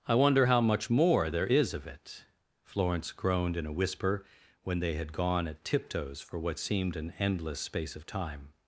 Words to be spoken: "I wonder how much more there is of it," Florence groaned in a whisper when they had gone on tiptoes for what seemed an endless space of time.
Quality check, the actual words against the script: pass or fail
fail